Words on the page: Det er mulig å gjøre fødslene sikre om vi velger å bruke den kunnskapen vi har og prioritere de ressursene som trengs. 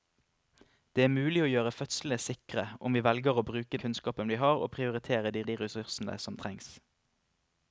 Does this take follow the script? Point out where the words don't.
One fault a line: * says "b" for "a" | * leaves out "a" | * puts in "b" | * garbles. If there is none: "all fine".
* leaves out "den"
* puts in "de"